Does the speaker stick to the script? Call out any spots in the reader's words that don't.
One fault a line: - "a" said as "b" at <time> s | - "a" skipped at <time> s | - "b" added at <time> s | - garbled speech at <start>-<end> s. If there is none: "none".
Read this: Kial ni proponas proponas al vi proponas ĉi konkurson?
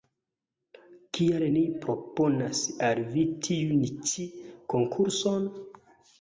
- "proponas" skipped at 2.6 s
- "proponas" said as "tiun" at 3.5 s